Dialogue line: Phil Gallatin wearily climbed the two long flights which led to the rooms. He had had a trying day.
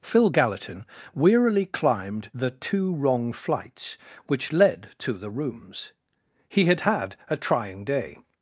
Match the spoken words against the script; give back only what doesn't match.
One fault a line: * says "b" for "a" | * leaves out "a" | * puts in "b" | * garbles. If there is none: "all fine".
* says "wrong" for "long"